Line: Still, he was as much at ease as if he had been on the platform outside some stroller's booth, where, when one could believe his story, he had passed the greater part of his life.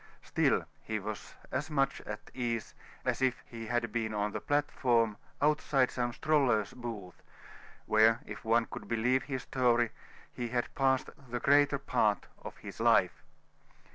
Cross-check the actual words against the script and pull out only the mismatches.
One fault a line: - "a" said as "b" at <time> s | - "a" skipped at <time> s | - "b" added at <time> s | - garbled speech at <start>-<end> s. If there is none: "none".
- "when" said as "if" at 8.2 s